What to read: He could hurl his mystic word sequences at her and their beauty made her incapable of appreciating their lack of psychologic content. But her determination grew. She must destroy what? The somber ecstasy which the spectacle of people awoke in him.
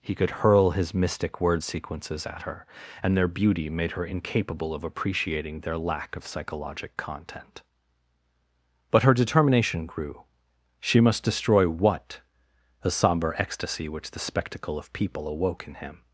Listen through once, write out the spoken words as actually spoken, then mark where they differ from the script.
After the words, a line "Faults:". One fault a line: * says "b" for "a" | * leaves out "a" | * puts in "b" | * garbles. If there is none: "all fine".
He could hurl his mystic word sequences at her and their beauty made her incapable of appreciating their lack of psychologic content. But her determination grew. She must destroy what? The somber ecstasy which the spectacle of people awoke in him.
Faults:
all fine